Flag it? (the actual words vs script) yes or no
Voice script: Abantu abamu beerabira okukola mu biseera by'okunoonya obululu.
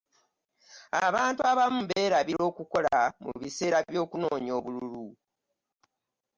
no